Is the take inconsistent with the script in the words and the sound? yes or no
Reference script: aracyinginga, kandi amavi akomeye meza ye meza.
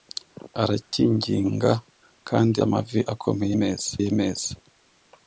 yes